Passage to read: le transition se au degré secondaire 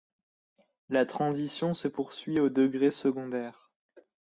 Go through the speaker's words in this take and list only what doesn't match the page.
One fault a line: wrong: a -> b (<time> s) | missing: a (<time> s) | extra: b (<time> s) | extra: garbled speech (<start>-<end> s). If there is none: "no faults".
wrong: le -> la (0.9 s)
extra: poursuit (1.8 s)